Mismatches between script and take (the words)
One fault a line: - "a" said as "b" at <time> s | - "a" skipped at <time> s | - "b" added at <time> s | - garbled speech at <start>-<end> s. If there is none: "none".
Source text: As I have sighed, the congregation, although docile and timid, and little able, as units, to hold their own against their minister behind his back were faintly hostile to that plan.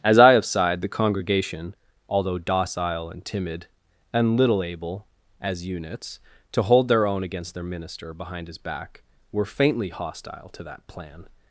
none